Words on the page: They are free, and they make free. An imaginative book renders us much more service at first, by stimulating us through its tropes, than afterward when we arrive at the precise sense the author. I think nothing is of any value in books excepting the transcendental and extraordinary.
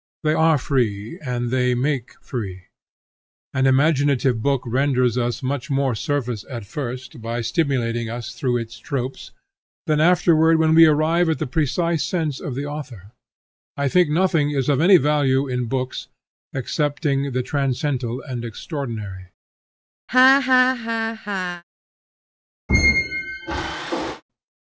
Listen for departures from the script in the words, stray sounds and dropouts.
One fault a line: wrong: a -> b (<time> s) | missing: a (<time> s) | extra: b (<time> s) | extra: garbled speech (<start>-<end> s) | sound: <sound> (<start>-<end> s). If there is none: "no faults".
extra: of (12.4 s)
sound: laugh (20.1-21.6 s)
sound: squeak (22.7-24.2 s)